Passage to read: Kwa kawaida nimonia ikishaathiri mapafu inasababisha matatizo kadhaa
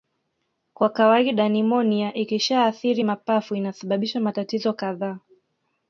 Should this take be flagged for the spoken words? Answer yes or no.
no